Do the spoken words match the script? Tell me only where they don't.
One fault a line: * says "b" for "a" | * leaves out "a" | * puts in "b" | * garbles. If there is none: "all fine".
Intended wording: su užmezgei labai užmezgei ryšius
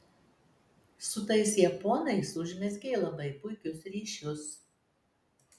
* puts in "tais japonais"
* says "puikius" for "užmezgei"